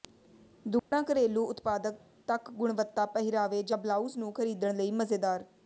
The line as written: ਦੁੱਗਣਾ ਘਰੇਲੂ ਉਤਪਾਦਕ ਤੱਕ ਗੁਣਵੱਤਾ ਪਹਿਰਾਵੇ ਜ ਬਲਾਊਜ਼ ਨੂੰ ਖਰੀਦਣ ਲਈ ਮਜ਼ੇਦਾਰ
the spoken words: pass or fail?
pass